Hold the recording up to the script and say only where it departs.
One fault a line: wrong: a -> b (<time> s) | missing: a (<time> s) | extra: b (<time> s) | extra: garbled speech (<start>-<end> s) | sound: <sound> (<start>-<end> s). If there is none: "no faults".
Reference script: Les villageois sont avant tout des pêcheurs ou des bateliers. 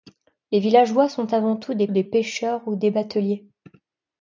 extra: des (1.9 s)